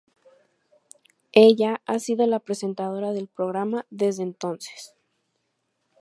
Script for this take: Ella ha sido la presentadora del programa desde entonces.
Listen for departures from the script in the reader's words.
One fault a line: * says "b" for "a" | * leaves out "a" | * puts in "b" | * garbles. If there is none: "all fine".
all fine